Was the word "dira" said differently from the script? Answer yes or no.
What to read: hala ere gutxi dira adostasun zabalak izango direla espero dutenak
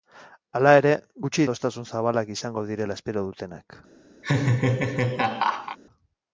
yes